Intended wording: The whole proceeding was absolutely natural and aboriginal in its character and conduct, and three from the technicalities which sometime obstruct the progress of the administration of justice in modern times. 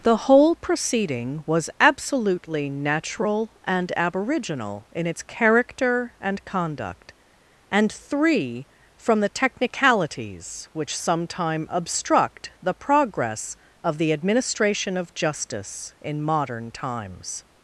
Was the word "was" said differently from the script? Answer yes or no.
no